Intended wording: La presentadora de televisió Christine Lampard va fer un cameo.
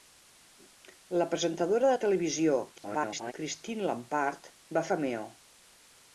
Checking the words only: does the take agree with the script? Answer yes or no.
no